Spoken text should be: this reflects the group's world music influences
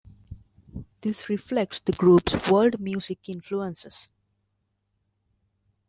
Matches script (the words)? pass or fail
pass